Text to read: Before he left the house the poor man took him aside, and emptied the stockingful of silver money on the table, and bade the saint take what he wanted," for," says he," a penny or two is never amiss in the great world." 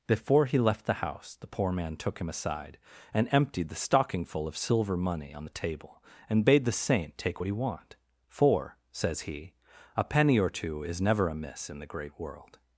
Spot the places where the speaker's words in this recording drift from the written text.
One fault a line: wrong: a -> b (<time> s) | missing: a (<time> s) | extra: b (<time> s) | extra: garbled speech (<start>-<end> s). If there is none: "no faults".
wrong: wanted -> want (7.5 s)